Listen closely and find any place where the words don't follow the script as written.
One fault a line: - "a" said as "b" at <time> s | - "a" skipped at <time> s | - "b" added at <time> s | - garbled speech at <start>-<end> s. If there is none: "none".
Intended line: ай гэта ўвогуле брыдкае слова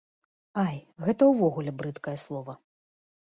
none